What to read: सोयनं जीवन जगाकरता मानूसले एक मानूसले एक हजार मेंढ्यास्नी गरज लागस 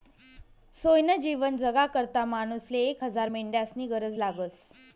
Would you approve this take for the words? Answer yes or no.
no